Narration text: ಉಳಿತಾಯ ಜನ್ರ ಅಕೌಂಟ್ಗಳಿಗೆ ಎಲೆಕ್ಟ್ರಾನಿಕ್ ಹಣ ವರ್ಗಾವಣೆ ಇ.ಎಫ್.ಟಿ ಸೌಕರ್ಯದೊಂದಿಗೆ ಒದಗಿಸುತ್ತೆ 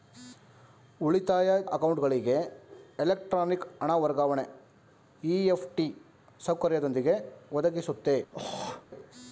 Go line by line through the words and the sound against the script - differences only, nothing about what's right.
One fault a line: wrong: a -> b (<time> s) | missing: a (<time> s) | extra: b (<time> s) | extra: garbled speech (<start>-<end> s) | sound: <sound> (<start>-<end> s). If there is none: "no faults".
missing: ಜನ್ರ (1.5 s)
sound: throat clearing (8.3-8.9 s)